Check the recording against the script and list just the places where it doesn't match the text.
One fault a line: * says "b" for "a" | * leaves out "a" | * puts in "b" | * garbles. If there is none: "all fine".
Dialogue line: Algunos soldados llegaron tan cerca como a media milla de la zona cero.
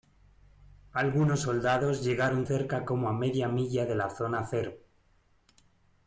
* leaves out "tan"